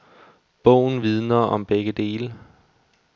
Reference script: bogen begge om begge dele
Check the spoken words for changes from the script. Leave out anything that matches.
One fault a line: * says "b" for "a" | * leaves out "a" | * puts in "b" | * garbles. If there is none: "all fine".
* says "vidner" for "begge"